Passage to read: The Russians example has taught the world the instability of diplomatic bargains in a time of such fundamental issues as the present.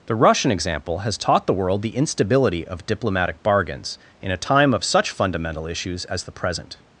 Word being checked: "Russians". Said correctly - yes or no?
no